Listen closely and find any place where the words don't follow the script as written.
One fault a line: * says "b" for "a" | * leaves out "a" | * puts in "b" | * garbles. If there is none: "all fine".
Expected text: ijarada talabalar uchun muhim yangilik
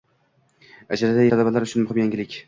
all fine